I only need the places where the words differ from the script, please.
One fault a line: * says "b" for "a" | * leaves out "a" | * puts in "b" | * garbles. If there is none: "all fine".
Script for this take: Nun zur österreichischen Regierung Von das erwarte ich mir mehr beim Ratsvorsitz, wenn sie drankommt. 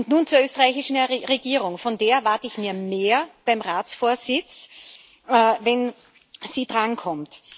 * says "der" for "das"